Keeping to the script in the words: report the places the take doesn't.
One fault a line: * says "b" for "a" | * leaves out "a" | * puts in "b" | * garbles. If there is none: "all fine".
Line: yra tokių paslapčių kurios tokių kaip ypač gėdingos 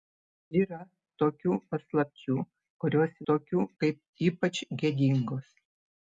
all fine